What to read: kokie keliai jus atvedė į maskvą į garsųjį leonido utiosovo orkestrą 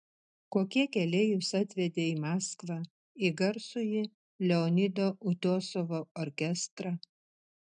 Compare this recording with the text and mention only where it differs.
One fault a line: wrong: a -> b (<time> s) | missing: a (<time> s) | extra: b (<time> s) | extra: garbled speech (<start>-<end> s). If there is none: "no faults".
no faults